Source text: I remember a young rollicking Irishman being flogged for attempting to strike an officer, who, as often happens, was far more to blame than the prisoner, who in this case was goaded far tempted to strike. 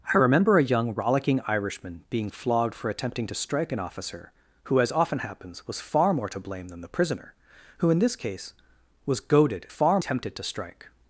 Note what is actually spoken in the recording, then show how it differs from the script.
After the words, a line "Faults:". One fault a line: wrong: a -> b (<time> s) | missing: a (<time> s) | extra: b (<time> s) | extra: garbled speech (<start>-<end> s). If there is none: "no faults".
I remember a young rollicking Irishman being flogged for attempting to strike an officer, who, as often happens, was far more to blame than the prisoner, who in this case was goaded far tempted to strike.
Faults:
no faults